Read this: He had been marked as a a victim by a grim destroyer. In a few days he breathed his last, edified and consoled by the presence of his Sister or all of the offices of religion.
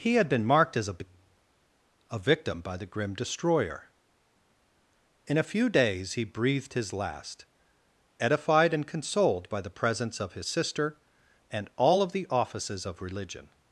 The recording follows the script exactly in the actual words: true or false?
false